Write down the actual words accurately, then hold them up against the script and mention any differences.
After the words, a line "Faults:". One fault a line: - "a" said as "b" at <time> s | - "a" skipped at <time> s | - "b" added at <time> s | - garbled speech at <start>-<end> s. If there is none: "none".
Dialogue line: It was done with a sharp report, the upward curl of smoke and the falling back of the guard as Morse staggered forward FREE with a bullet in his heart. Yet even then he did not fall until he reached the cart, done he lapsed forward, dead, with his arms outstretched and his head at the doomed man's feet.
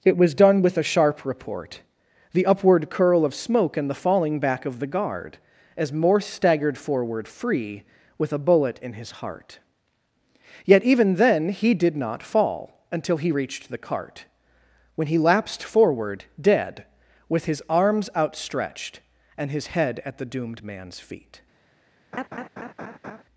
It was done with a sharp report, the upward curl of smoke and the falling back of the guard as Morse staggered forward FREE with a bullet in his heart. Yet even then he did not fall until he reached the cart, when he lapsed forward, dead, with his arms outstretched and his head at the doomed man's feet.
Faults:
- "done" said as "when" at 14.9 s